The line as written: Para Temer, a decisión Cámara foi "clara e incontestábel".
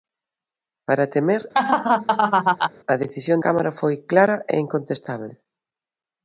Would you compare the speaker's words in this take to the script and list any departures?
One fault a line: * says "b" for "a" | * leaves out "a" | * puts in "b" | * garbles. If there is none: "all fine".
all fine